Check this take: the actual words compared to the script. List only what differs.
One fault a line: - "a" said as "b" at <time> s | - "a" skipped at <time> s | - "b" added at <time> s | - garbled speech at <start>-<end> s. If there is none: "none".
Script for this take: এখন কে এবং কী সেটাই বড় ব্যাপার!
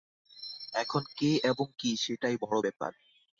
none